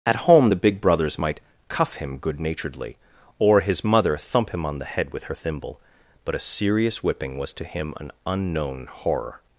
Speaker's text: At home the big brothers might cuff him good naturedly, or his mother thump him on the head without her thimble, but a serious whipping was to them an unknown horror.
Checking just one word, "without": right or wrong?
wrong